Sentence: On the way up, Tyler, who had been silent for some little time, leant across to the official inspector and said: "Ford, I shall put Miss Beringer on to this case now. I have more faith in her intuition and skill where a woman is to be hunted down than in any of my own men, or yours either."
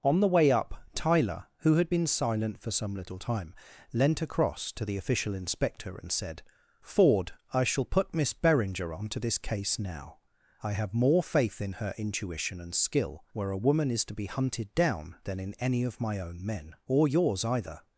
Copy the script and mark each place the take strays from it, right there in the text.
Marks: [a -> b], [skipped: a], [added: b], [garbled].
On the way up, Tyler, who had been silent for some little time, leant across to the official inspector and said: "Ford, I shall put Miss Beringer on to this case now. I have more faith in her intuition and skill where a woman is to be hunted down than in any of my own men, or yours either."